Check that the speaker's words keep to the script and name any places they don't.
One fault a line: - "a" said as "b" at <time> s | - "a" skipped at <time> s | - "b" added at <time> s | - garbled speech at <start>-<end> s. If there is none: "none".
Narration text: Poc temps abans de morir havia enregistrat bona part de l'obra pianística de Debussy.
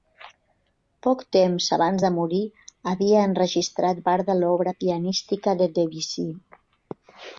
- "bona" skipped at 4.0 s